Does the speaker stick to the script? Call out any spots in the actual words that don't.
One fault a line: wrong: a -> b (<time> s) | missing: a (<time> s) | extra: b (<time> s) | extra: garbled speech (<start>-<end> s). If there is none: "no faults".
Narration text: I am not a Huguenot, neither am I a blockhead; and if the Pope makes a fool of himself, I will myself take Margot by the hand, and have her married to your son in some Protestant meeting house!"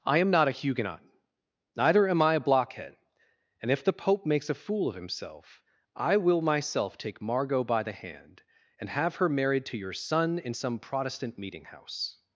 no faults